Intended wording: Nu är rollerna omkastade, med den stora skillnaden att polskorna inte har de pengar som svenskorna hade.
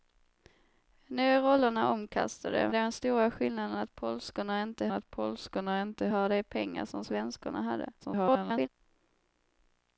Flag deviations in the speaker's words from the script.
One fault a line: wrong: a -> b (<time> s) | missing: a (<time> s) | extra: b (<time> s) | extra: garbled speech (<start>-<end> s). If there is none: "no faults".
missing: med (2.7 s)
extra: att polskorna inte (4.9 s)
extra: garbled speech (8.0-8.7 s)